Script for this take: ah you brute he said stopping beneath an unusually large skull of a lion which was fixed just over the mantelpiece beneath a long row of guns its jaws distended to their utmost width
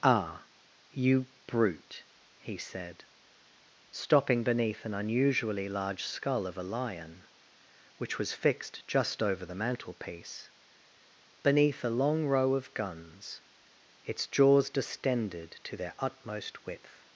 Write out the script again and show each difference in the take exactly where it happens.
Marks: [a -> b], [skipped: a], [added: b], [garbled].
ah you brute he said stopping beneath an unusually large skull of a lion which was fixed just over the mantelpiece beneath a long row of guns its jaws distended to their utmost width